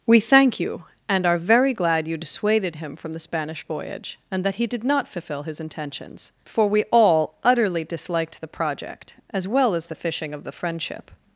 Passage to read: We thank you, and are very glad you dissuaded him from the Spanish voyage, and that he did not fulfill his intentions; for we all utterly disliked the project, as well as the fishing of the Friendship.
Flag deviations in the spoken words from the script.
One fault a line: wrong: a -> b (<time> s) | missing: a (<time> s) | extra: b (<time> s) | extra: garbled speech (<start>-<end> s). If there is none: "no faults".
no faults